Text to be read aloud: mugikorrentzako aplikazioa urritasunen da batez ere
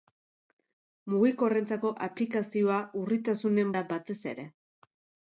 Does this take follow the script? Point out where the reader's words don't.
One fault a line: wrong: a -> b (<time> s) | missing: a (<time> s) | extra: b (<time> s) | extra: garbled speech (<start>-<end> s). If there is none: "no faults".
no faults